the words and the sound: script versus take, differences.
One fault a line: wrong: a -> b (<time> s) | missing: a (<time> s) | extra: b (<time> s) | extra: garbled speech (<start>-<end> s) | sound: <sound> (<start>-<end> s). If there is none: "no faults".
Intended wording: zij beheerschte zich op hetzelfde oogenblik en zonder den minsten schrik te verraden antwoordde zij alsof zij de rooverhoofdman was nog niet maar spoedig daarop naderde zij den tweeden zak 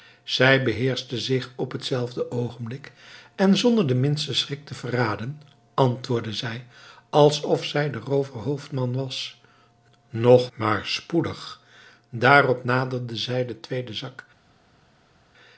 missing: niet (10.5 s)